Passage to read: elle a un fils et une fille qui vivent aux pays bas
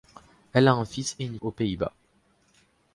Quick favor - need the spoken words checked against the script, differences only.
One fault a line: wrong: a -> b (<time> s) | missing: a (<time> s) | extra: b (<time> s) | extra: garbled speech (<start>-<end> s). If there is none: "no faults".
missing: fille qui vivent (1.4 s)